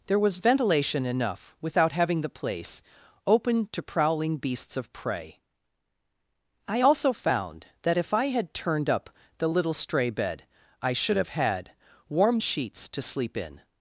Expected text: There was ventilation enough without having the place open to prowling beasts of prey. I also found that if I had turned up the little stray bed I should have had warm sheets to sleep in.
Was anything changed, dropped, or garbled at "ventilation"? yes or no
no